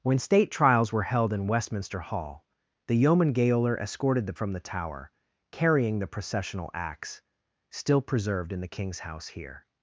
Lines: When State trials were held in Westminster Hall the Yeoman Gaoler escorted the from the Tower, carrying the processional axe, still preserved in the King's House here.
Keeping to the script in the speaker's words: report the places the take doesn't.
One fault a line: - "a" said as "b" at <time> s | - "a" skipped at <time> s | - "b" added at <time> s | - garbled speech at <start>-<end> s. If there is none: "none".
none